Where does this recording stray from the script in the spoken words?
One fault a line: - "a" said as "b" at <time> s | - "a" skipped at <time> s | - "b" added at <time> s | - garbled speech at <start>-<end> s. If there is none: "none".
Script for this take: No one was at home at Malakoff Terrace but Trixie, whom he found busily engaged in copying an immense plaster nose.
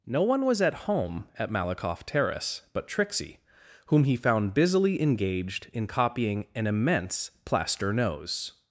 none